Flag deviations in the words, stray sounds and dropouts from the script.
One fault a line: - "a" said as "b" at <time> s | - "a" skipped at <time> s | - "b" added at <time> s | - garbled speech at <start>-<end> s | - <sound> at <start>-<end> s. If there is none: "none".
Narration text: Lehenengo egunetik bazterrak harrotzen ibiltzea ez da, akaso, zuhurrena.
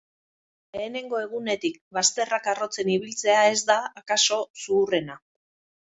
none